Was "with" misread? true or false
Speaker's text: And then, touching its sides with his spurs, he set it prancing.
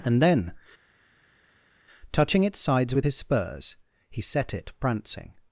false